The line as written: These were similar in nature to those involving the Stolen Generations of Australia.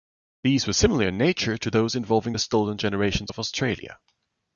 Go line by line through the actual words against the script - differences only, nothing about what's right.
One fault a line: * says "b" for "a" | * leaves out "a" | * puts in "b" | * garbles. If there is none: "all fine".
all fine